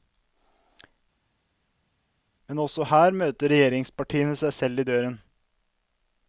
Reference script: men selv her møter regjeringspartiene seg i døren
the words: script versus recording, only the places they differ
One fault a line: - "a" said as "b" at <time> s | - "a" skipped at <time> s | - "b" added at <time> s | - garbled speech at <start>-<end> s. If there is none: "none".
- "selv" said as "også" at 2.6 s
- "selv" added at 4.6 s